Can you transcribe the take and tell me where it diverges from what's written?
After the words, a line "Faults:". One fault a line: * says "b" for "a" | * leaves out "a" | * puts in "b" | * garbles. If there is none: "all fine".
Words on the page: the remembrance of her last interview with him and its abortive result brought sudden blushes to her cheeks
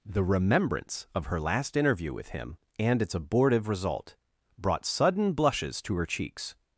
the remembrance of her last interview with him and its abortive result brought sudden blushes to her cheeks
Faults:
all fine